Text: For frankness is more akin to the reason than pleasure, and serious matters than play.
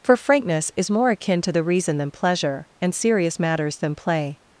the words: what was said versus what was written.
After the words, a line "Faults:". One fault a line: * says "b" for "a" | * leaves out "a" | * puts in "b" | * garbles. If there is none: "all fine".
For frankness is more akin to the reason than pleasure, and serious matters than play.
Faults:
all fine